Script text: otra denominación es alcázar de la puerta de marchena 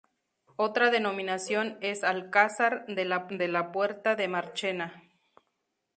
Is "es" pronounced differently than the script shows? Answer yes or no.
no